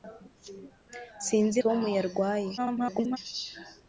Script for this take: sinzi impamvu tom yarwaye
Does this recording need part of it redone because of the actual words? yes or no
yes